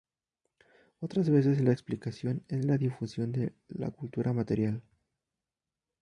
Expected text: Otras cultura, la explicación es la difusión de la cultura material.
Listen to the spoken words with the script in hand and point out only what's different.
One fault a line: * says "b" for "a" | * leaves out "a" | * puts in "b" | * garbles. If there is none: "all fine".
* says "veces" for "cultura"